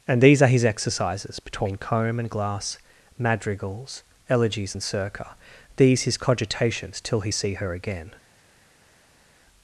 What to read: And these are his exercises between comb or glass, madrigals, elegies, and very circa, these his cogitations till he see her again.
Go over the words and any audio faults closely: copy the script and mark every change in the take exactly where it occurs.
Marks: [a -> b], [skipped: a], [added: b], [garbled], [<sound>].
And these are his exercises between comb [or -> and] glass, madrigals, elegies, and [skipped: very] circa, these his cogitations till he see her again.